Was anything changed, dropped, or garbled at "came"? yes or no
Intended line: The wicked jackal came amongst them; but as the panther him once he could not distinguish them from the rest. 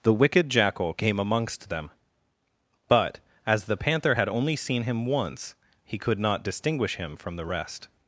no